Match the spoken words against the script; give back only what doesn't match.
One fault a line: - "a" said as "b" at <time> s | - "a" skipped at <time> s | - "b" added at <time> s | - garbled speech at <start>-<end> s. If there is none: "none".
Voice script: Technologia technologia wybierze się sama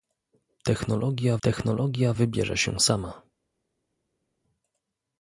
none